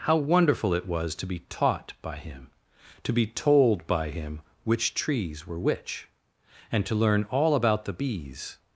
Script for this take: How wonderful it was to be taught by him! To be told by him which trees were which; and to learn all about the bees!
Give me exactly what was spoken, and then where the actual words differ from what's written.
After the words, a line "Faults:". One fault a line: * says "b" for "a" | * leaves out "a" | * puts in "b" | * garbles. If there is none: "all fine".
How wonderful it was to be taught by him! To be told by him which trees were which; and to learn all about the bees!
Faults:
all fine